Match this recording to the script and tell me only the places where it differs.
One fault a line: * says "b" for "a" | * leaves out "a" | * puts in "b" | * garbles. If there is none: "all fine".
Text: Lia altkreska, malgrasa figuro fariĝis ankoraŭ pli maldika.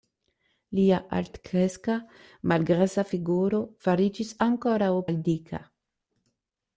* leaves out "pli"